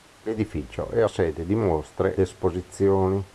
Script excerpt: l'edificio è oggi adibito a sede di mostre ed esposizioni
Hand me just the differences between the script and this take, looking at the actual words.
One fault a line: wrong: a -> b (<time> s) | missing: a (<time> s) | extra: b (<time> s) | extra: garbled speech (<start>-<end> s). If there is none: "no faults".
missing: oggi adibito (1.1 s)
missing: ed (2.2 s)